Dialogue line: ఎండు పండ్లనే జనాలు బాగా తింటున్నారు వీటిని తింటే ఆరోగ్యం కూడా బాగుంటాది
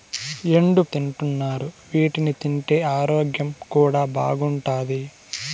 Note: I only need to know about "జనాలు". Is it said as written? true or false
false